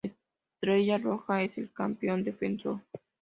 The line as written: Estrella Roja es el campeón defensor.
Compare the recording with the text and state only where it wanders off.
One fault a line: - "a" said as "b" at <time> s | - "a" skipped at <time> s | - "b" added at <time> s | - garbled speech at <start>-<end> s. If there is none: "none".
none